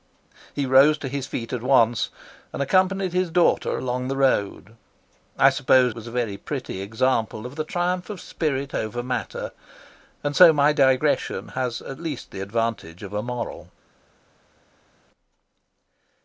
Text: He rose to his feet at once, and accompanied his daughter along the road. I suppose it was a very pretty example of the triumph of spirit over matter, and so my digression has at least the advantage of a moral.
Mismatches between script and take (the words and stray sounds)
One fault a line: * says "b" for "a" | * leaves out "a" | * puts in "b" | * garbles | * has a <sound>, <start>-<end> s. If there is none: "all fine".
* leaves out "it"